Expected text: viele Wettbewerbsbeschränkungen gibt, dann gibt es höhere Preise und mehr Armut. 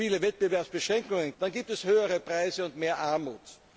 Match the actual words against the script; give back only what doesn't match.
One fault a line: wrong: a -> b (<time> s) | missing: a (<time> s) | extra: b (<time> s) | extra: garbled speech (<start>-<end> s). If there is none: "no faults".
missing: gibt (1.4 s)